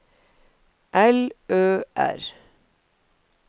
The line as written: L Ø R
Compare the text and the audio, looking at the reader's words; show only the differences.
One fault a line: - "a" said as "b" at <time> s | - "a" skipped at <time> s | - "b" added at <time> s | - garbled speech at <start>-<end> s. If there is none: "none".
none